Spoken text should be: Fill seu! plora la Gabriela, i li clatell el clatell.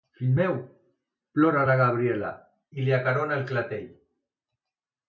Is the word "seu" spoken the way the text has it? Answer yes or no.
no